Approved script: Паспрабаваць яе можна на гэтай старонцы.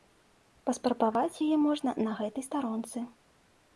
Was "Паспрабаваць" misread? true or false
false